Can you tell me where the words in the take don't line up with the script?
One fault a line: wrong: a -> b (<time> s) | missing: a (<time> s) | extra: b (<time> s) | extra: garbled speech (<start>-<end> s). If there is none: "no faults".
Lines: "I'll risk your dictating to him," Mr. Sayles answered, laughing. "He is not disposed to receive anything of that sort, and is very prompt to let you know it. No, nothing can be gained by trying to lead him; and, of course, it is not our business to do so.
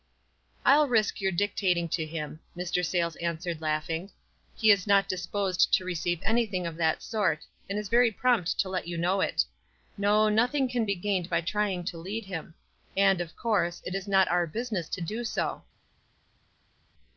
no faults